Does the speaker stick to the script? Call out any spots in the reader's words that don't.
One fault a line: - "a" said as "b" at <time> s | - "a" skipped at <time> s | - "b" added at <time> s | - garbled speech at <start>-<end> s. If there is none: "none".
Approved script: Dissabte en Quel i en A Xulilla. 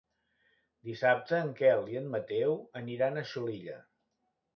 - "Mateu aniran" added at 2.1 s